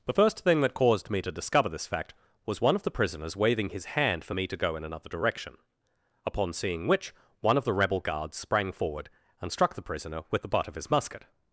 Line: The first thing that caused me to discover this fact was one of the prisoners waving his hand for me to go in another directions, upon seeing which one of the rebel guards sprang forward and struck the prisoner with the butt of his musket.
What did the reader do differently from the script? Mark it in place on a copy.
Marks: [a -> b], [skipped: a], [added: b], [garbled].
The first thing that caused me to discover this fact was one of the prisoners waving his hand for me to go in another [directions, -> direction] upon seeing which one of the rebel guards sprang forward and struck the prisoner with the butt of his musket.